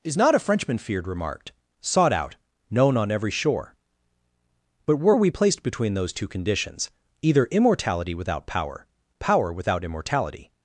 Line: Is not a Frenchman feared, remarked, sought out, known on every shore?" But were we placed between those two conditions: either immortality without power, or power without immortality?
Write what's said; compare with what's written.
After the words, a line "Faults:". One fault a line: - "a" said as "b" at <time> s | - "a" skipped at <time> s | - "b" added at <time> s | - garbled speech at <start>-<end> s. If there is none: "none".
Is not a Frenchman feared, remarked, sought out, known on every shore?" But were we placed between those two conditions: either immortality without power, power without immortality?
Faults:
- "or" skipped at 8.9 s